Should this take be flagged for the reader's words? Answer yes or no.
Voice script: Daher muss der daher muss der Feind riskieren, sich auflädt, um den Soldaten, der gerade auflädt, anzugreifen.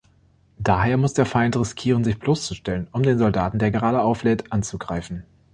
yes